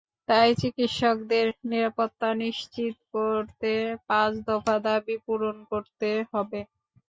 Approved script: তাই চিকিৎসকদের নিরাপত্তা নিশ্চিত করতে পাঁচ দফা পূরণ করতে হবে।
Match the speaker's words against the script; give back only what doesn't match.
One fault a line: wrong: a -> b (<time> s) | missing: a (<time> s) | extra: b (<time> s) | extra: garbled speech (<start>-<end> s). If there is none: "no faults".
extra: দাবি (4.9 s)